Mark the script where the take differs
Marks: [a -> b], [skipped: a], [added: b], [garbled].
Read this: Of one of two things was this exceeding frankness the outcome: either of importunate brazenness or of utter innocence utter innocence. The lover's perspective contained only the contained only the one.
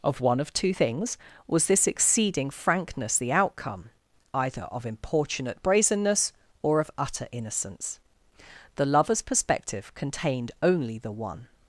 Of one of two things was this exceeding frankness the outcome: either of importunate brazenness or of utter innocence [skipped: utter innocence.] The lover's perspective contained only the [skipped: contained only the] one.